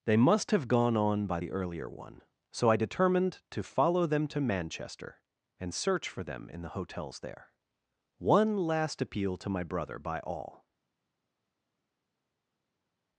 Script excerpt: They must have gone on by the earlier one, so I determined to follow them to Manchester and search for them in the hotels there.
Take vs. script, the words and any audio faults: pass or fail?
fail